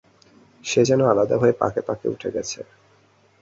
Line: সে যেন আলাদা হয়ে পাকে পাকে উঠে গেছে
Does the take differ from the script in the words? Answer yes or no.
no